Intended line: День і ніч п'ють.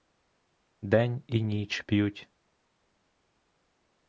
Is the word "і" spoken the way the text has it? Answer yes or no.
yes